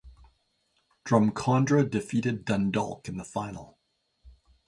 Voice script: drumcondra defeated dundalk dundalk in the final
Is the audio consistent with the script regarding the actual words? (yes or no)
no